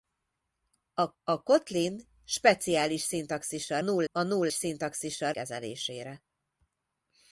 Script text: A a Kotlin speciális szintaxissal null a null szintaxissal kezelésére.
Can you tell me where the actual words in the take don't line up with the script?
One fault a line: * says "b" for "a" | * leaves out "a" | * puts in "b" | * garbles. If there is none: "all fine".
all fine